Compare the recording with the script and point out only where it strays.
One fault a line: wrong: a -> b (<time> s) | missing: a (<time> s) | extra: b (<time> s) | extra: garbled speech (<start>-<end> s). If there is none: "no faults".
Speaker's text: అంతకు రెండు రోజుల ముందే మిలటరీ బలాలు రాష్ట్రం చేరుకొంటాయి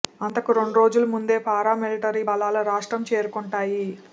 extra: పారా (1.4 s)